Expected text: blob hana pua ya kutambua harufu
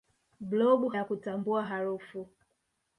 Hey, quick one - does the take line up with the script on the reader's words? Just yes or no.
no